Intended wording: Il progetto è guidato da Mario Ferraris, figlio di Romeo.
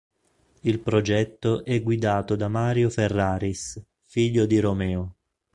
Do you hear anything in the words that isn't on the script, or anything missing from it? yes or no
no